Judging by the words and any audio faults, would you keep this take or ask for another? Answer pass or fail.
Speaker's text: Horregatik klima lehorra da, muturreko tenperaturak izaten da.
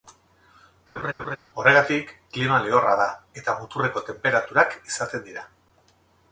fail